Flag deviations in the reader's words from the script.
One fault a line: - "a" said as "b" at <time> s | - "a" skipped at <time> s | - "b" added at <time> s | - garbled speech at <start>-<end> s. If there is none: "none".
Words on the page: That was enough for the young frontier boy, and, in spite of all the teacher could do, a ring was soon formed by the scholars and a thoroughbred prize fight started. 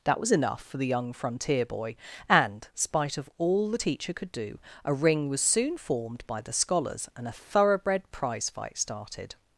- "in" skipped at 2.7 s